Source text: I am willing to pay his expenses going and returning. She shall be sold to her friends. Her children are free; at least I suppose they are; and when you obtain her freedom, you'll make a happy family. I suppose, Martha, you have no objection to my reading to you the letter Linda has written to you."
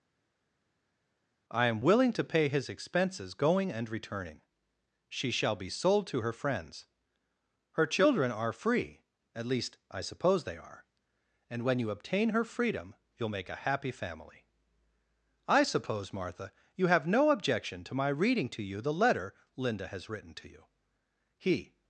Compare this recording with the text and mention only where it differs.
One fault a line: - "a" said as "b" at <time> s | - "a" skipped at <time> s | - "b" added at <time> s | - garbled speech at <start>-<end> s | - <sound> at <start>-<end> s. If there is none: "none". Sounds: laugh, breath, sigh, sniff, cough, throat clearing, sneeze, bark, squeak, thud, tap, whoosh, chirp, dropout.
- "He" added at 21.4 s